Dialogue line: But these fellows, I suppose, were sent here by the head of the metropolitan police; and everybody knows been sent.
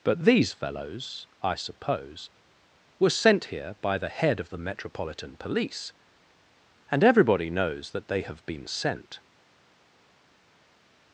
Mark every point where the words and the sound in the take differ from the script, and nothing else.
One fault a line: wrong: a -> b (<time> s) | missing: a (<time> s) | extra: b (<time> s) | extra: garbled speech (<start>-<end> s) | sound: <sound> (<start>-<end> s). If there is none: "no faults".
extra: that they have (7.9 s)